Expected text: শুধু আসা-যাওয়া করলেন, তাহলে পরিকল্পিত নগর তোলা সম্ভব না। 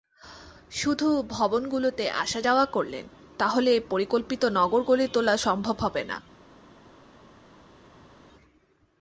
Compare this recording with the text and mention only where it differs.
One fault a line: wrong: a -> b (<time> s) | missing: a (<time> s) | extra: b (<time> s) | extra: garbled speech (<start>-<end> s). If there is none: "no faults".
extra: ভবনগুলোতে (1.3 s)
extra: গড়ে (4.8 s)
extra: হবে (5.8 s)